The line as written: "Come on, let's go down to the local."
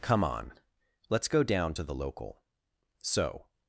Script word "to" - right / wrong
right